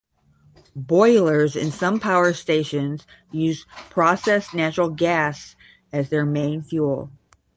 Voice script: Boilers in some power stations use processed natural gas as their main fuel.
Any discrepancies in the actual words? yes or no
no